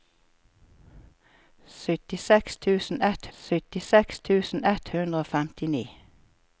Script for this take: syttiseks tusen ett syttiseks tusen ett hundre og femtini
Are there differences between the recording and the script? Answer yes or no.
no